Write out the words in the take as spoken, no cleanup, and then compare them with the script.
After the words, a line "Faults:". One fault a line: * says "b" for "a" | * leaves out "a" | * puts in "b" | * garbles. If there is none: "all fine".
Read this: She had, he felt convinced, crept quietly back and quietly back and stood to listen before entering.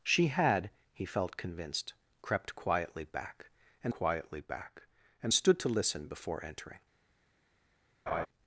She had, he felt convinced, crept quietly back and quietly back and stood to listen before entering.
Faults:
all fine